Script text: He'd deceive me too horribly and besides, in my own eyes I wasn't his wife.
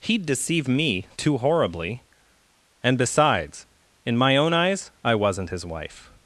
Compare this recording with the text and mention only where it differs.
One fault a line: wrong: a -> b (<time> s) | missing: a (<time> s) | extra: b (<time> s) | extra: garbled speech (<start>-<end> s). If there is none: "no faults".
no faults